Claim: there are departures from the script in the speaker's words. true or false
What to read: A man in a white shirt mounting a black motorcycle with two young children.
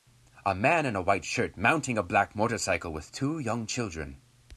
false